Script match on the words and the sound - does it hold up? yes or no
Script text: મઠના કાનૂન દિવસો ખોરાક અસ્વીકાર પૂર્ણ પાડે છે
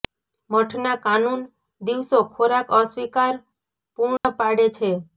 no